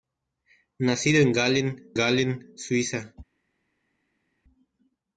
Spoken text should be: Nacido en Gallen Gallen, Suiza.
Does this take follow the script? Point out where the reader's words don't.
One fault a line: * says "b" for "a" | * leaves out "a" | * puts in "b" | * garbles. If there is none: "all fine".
all fine